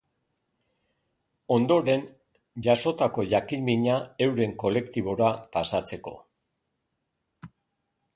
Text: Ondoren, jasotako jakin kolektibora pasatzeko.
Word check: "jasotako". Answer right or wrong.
right